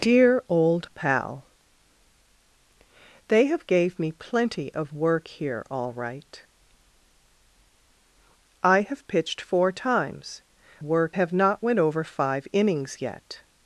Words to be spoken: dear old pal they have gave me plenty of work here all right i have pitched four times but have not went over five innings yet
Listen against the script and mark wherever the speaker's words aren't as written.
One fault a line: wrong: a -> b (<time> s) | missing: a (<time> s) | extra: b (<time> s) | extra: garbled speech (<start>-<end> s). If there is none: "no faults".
wrong: but -> work (10.8 s)